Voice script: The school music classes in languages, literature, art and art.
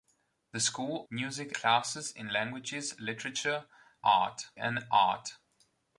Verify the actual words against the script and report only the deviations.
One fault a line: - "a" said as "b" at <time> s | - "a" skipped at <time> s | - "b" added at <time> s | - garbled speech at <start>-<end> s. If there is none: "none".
none